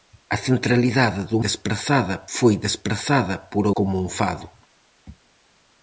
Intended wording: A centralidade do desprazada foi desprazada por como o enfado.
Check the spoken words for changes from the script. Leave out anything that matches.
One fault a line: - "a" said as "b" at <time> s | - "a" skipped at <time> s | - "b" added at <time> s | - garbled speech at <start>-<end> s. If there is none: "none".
none